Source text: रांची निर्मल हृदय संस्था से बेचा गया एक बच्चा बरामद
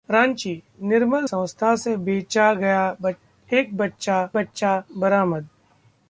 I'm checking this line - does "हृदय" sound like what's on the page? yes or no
no